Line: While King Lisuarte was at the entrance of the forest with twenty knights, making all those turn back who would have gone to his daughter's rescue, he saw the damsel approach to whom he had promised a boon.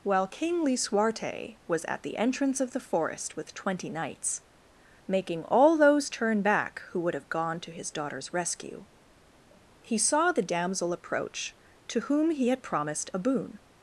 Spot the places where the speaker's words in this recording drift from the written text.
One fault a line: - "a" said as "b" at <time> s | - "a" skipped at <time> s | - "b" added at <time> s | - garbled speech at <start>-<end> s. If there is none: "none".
none